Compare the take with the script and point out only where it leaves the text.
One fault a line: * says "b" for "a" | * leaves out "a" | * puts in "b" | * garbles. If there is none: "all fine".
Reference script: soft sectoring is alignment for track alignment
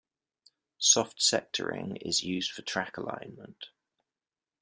* says "used" for "alignment"